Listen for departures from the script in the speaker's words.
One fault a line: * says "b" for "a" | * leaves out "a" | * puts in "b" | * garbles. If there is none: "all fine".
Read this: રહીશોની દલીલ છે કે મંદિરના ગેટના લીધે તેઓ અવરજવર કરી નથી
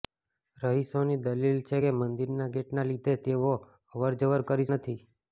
all fine